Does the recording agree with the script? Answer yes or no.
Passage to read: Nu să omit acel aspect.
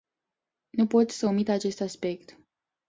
no